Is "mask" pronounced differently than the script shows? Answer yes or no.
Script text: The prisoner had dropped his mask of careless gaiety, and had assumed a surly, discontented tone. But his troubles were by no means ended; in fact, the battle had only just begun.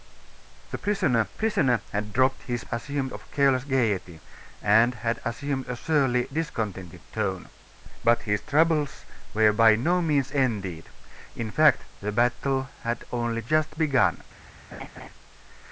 yes